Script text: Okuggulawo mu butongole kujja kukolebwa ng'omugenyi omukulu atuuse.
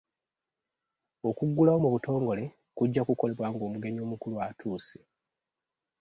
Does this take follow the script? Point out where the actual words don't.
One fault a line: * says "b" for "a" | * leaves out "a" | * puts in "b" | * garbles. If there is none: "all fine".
all fine